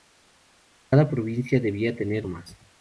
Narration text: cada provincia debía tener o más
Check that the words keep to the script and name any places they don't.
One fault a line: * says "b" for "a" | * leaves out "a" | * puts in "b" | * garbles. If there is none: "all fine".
all fine